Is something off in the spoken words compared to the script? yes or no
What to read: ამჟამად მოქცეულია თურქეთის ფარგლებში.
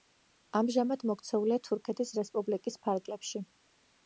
yes